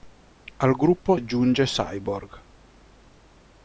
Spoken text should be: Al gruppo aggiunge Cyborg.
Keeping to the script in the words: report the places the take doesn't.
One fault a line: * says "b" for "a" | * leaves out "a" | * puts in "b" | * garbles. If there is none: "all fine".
all fine